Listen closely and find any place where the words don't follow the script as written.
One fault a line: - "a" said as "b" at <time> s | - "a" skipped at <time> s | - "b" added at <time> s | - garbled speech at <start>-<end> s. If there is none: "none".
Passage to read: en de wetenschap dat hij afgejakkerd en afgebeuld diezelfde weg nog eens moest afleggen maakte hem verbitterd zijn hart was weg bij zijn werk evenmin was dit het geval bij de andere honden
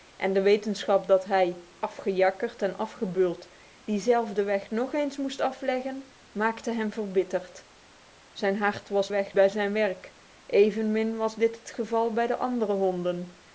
none